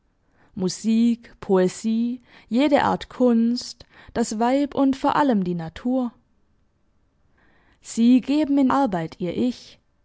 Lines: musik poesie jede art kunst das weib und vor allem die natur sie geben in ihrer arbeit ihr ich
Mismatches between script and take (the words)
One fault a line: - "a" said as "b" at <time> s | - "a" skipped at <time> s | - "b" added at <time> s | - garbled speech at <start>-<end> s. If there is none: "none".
- "ihrer" skipped at 8.7 s